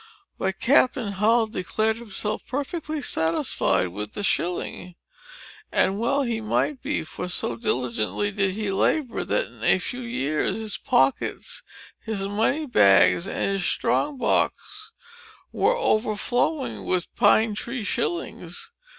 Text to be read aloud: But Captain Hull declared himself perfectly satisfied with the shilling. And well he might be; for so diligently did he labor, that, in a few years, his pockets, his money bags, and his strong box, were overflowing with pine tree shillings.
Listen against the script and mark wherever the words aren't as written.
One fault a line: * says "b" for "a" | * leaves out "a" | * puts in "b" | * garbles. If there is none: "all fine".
all fine